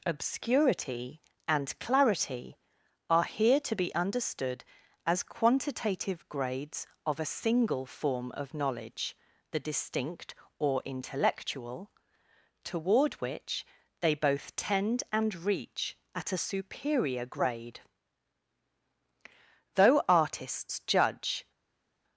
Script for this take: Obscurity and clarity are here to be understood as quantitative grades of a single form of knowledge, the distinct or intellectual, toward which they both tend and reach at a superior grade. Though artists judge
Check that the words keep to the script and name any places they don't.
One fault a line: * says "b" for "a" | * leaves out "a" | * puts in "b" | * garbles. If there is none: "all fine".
all fine